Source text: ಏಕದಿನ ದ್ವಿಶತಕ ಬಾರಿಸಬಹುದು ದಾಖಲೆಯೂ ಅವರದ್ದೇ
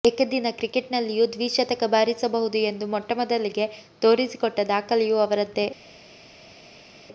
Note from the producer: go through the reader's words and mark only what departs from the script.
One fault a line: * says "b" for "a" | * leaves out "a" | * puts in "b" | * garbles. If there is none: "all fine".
* puts in "ಕ್ರಿಕೆಟ್ನಲ್ಲಿಯೂ"
* puts in "ಎಂದು ಮೊಟ್ಟಮೊದಲಿಗೆ ತೋರಿಸಿಕೊಟ್ಟ"